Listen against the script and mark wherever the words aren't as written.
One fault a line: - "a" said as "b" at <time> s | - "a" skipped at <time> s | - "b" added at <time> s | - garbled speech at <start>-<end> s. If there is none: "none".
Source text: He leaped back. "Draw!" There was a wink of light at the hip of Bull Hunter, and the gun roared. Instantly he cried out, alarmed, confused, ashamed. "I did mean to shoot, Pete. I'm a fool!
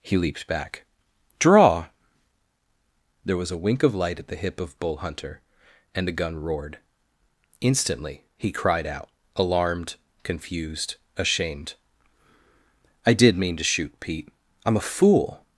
none